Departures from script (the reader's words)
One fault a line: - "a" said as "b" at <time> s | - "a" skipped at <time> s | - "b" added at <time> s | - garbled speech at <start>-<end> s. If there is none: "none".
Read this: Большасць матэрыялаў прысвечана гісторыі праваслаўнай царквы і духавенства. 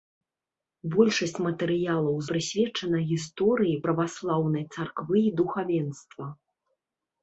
none